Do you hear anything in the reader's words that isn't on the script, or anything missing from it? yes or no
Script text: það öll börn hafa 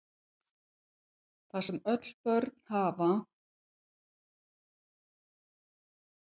yes